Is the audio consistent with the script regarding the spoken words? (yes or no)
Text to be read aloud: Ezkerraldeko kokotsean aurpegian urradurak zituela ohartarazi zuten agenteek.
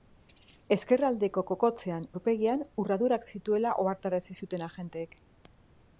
yes